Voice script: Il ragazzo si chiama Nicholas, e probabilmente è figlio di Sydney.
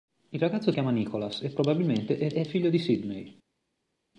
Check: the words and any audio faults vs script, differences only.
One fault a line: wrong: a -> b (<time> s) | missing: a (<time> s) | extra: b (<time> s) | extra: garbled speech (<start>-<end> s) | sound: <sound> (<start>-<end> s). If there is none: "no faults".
missing: si (0.7 s)
extra: è (2.3 s)